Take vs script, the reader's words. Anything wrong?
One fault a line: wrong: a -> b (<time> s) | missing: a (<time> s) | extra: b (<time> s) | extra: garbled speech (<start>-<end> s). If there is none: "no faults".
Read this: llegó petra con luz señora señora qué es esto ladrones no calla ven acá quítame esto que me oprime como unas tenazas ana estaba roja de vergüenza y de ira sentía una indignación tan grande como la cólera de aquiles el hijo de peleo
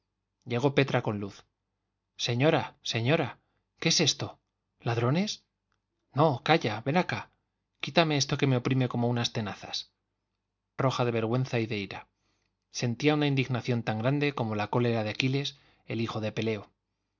missing: ana estaba (9.9 s)